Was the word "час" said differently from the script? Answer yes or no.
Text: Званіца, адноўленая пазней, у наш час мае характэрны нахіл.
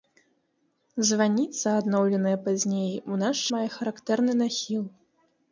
yes